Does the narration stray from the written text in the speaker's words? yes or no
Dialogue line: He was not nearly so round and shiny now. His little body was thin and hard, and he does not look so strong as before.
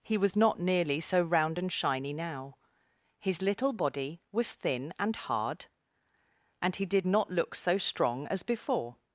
yes